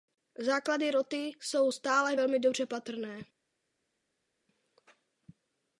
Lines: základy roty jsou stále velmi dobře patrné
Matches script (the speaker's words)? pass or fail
pass